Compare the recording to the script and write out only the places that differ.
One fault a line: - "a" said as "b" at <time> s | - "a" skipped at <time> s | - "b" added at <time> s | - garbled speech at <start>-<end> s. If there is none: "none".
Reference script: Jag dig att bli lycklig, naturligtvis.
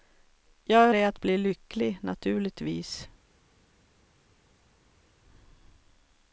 none